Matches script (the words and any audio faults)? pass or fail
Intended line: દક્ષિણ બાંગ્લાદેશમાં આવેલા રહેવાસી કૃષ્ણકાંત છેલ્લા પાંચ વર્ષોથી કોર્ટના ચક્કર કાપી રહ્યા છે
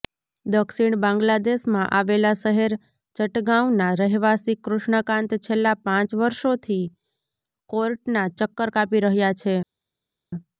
fail